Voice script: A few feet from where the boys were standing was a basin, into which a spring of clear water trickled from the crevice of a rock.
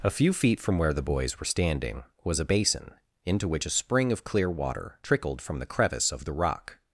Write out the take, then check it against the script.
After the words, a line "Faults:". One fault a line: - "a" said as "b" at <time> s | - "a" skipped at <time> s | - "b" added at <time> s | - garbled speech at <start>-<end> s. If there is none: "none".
A few feet from where the boys were standing was a basin, into which a spring of clear water trickled from the crevice of the rock.
Faults:
- "a" said as "the" at 6.2 s